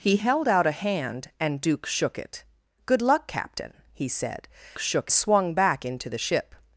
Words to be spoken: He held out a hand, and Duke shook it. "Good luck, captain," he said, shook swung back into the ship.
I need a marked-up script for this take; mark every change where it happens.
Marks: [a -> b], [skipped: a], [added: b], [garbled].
He held out a hand, and Duke shook it. "Good luck, captain," he said, shook swung back into the ship.